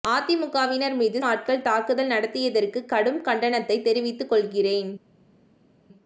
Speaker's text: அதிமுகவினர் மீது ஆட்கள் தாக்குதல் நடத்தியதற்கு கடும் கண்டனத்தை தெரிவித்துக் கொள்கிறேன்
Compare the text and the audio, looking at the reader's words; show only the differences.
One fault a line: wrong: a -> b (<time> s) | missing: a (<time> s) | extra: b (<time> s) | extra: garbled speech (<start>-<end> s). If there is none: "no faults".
no faults